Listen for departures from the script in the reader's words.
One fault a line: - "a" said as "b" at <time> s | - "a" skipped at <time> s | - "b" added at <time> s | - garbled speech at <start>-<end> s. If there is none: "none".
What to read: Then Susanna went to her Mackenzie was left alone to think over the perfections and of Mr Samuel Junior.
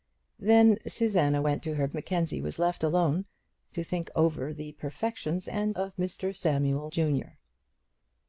none